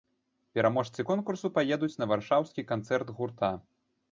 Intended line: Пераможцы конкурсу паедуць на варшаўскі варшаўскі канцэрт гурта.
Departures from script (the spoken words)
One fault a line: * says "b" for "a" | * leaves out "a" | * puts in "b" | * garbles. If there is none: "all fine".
* leaves out "варшаўскі"